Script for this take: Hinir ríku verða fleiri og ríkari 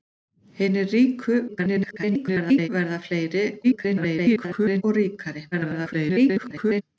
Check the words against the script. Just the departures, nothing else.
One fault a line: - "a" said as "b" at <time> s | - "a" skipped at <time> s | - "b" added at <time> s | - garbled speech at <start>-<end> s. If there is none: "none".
- garbled speech at 1.5-2.7 s
- garbled speech at 3.6-4.8 s
- garbled speech at 5.5-6.8 s